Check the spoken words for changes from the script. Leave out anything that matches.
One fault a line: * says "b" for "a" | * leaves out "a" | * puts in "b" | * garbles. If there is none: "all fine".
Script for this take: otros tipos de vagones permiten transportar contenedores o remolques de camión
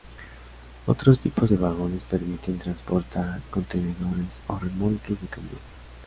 all fine